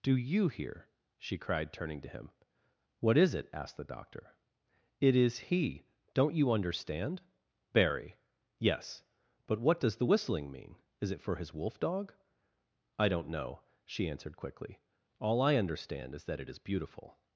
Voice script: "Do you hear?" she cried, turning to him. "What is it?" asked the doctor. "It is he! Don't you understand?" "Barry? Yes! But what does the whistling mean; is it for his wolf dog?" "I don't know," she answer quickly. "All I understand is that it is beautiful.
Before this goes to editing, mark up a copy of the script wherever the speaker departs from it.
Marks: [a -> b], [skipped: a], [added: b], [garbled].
"Do you hear?" she cried, turning to him. "What is it?" asked the doctor. "It is he! Don't you understand?" "Barry? Yes! But what does the whistling mean; is it for his wolf dog?" "I don't know," she [answer -> answered] quickly. "All I understand is that it is beautiful.